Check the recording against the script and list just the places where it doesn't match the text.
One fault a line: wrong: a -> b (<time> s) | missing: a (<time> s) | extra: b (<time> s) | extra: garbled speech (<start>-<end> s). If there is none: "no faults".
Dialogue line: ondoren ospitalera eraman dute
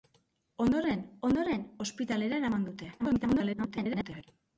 extra: ondoren (1.3 s)
extra: garbled speech (3.0-4.2 s)